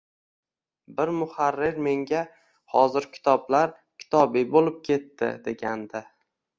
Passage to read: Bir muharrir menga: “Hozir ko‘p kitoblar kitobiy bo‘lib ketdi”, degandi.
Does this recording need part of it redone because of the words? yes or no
yes